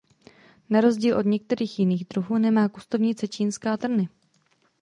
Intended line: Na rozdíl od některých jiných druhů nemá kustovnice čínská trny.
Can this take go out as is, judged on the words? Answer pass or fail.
pass